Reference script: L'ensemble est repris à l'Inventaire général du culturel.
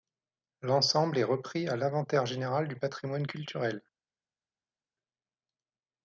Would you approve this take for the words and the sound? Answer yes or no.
no